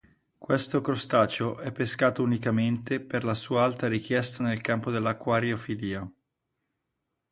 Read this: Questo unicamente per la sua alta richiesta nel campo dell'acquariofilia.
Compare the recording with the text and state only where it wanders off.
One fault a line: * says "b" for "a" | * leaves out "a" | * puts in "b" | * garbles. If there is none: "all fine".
* puts in "crostaceo è pescato"